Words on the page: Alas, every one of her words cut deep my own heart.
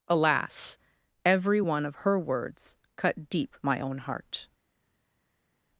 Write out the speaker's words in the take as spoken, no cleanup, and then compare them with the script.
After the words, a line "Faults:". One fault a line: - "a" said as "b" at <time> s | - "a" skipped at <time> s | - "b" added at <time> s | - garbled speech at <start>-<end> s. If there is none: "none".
Alas, every one of her words cut deep my own heart.
Faults:
none